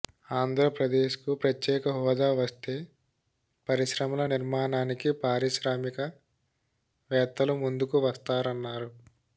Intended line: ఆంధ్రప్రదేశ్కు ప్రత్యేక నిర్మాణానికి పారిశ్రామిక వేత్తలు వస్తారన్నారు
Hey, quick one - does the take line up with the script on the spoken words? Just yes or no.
no